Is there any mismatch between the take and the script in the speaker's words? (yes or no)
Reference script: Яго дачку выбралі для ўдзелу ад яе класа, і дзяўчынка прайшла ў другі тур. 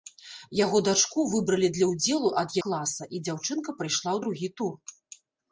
yes